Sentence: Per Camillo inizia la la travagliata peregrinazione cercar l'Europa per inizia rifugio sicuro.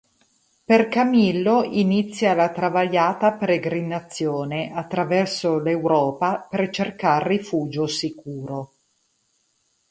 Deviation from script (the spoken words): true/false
true